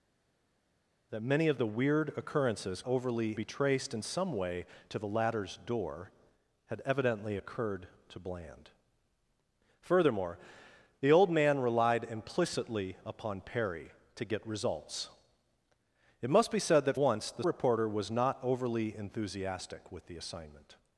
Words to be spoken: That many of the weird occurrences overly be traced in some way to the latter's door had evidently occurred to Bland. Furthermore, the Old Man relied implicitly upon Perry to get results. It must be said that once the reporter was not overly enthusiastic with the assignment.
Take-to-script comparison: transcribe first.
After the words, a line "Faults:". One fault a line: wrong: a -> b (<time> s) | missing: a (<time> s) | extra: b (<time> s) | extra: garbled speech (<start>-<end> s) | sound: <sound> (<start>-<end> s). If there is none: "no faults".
That many of the weird occurrences overly be traced in some way to the latter's door had evidently occurred to Bland. Furthermore, the Old Man relied implicitly upon Perry to get results. It must be said that once the reporter was not overly enthusiastic with the assignment.
Faults:
no faults